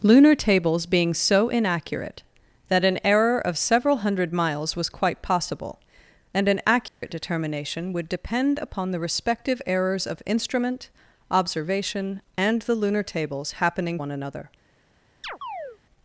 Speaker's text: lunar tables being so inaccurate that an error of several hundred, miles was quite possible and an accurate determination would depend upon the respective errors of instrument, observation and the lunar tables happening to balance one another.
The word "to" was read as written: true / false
false